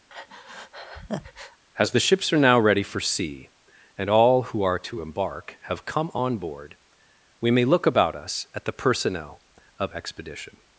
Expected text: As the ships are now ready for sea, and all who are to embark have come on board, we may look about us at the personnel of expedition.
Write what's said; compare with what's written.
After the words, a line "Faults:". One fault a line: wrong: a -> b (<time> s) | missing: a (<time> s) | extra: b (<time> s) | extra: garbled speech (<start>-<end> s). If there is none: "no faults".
As the ships are now ready for sea, and all who are to embark have come on board, we may look about us at the personnel of expedition.
Faults:
no faults